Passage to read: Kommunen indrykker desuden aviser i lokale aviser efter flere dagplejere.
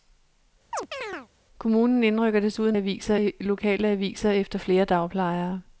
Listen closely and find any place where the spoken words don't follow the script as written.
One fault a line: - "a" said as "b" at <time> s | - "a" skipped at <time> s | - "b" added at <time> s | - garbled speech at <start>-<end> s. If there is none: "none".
none